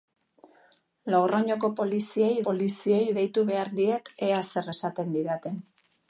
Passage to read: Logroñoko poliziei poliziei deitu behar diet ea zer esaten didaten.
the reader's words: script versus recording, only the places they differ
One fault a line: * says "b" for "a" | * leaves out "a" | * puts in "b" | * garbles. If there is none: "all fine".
all fine